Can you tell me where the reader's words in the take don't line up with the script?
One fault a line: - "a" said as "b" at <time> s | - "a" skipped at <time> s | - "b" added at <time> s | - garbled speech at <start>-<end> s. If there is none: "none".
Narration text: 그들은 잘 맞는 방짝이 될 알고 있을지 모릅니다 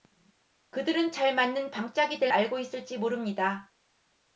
none